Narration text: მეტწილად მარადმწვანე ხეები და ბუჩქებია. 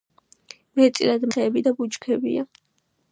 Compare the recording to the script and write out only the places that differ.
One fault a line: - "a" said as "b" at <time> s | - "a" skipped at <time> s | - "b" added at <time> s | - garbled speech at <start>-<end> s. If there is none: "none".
- "მარადმწვანე" skipped at 1.3 s